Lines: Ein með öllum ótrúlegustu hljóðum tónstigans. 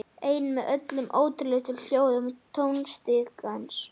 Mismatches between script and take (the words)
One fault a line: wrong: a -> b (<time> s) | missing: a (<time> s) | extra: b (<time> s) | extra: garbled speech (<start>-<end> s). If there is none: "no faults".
no faults